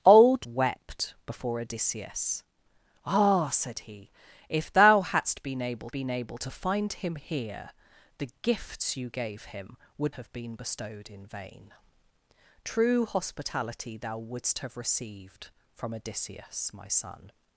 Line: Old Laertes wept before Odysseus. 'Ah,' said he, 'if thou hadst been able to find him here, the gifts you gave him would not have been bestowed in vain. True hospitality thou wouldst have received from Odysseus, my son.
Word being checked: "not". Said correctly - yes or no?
no